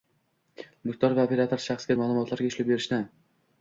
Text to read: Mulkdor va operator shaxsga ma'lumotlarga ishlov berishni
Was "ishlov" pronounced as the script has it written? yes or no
yes